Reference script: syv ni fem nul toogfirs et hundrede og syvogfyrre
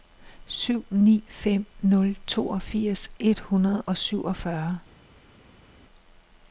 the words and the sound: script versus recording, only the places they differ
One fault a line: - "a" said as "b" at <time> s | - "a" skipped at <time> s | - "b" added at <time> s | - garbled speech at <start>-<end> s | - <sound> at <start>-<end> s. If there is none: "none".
none